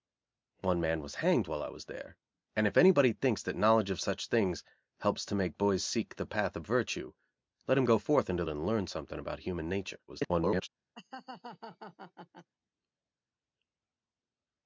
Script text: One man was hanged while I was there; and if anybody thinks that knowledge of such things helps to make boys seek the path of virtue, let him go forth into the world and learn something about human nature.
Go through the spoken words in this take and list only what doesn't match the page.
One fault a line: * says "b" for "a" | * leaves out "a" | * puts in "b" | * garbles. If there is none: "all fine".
* leaves out "the world"
* garbles